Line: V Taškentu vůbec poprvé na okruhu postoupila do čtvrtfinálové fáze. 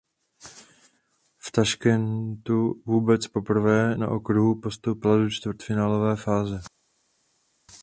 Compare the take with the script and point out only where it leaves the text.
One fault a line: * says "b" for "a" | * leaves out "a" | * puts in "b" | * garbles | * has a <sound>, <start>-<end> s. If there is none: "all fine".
all fine